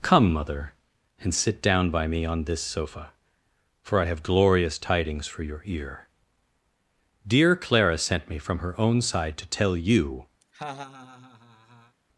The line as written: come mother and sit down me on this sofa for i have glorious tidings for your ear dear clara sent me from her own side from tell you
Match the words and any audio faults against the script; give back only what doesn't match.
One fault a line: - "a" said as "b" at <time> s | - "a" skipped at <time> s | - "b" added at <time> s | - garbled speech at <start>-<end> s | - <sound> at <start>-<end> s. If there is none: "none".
- "by" added at 1.9 s
- "from" said as "to" at 9.4 s
- laugh at 10.4-12.0 s